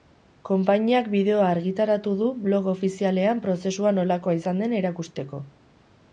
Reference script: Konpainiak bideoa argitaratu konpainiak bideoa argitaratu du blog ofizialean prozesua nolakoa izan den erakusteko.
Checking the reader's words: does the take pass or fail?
fail